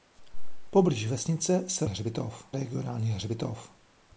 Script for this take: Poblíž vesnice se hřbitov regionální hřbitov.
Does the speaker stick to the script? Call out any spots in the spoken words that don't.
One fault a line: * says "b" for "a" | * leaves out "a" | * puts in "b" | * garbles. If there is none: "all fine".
all fine